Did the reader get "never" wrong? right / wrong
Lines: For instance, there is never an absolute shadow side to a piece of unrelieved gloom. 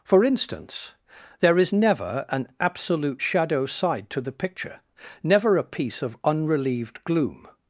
right